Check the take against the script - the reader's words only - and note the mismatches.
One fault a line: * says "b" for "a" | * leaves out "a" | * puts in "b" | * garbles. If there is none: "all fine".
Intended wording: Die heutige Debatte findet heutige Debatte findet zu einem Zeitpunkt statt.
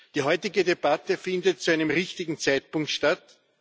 * leaves out "heutige Debatte findet"
* puts in "richtigen"